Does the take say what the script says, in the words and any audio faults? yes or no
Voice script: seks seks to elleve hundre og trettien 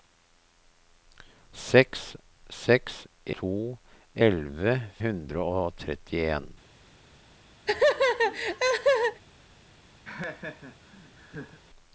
no